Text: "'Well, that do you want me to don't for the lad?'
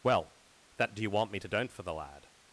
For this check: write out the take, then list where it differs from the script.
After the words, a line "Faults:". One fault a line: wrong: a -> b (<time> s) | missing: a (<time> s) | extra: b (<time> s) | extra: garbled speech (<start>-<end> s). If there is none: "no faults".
"'Well, that do you want me to don't for the lad?'
Faults:
no faults